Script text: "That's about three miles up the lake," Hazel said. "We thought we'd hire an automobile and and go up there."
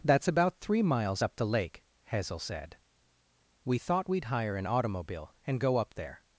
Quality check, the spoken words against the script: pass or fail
fail